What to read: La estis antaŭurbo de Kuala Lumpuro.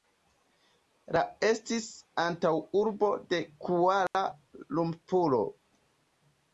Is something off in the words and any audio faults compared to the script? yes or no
yes